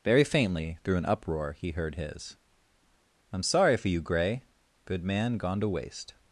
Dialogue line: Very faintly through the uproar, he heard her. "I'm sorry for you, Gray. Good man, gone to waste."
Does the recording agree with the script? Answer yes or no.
no